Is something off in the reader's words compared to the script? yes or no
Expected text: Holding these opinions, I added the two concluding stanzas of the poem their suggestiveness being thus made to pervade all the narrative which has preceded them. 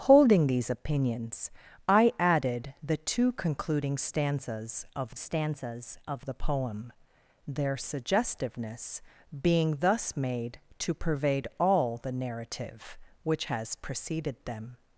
yes